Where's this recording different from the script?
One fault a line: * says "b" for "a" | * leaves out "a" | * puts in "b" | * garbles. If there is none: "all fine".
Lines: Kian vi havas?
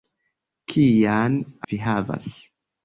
all fine